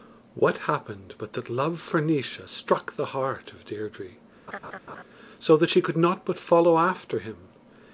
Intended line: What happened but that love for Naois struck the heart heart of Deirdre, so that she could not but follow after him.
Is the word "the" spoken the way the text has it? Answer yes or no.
yes